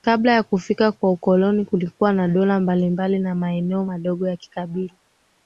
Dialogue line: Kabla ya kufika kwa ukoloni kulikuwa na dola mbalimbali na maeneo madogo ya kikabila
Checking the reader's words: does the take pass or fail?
pass